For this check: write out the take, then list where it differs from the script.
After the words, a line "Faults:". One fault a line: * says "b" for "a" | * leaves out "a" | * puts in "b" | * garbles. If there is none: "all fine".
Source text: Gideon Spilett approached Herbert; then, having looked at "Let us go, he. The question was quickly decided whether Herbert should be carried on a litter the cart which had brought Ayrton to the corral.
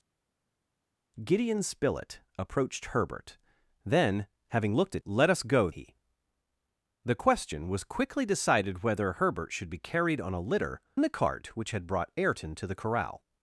Gideon Spilett approached Herbert; then, having looked at "Let us go, he. The question was quickly decided whether Herbert should be carried on a litter the cart which had brought Ayrton to the corral.
Faults:
all fine